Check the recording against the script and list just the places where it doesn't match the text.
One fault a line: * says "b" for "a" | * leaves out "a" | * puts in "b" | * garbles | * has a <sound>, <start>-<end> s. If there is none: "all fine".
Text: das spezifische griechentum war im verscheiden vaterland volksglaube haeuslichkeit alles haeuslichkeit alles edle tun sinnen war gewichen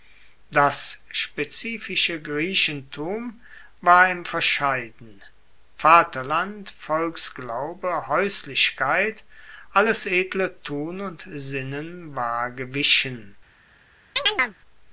* leaves out "haeuslichkeit alles"
* puts in "und"
* has a chirp, 14.2-14.6 s